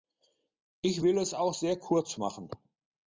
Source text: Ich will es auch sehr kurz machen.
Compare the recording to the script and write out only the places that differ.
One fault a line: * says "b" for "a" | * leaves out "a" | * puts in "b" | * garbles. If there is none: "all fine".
all fine